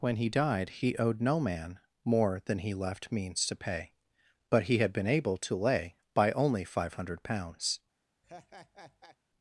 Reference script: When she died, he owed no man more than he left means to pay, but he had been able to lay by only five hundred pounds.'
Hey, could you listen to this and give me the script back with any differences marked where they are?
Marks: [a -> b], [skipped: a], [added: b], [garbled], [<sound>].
When [she -> he] died, he owed no man more than he left means to pay, but he had been able to lay by only five hundred pounds.' [laugh]